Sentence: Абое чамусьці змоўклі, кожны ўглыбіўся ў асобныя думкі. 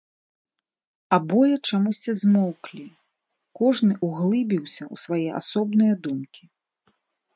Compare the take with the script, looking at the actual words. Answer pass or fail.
fail